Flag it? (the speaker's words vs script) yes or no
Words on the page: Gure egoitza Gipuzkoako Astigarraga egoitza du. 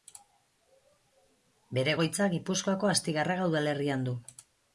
yes